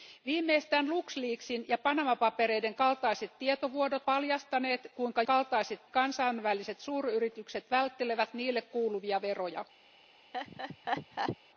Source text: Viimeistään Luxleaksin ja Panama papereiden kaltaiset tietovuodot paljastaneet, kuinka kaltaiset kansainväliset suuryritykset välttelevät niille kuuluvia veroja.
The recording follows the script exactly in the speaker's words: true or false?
true